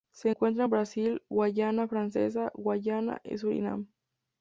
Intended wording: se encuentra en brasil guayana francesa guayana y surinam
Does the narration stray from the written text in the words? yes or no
no